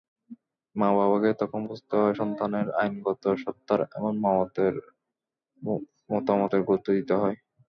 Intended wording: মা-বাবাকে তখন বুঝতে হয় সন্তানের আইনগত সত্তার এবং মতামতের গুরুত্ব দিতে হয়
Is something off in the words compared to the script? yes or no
no